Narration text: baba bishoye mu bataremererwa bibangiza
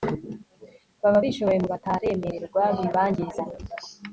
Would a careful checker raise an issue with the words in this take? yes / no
no